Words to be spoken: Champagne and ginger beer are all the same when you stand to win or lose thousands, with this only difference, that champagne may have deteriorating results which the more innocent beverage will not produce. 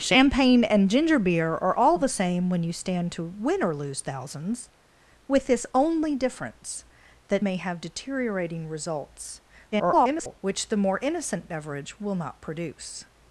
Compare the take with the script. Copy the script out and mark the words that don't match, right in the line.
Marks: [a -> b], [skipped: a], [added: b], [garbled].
Champagne and ginger beer are all the same when you stand to win or lose thousands, with this only difference, that [skipped: champagne] may have deteriorating results [garbled] which the more innocent beverage will not produce.